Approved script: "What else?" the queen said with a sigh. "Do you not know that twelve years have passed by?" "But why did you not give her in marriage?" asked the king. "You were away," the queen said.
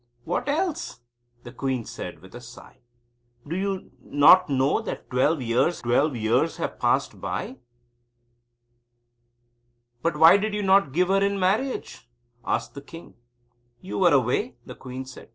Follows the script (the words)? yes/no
no